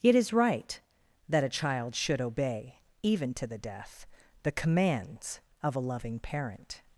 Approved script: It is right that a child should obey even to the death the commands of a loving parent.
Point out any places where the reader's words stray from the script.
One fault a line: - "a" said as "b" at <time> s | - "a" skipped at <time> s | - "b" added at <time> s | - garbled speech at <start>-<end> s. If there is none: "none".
none